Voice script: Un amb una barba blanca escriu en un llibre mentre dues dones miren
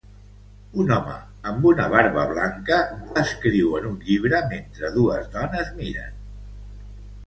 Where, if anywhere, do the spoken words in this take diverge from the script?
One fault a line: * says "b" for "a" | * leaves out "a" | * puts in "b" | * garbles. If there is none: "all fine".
* puts in "home"